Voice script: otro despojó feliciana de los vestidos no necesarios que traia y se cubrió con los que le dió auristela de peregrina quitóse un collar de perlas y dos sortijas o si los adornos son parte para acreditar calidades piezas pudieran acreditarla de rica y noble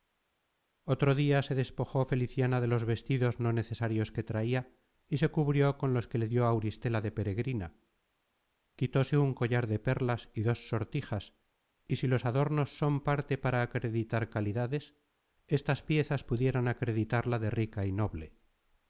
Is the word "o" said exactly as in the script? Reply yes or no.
no